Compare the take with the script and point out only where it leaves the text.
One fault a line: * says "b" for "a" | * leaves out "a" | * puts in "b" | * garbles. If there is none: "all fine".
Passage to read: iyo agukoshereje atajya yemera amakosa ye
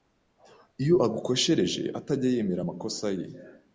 all fine